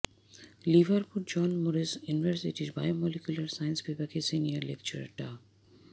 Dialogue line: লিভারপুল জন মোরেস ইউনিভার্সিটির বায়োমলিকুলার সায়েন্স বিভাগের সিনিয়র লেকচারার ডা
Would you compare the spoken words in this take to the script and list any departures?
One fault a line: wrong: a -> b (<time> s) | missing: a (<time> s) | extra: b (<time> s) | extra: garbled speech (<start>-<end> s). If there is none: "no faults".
no faults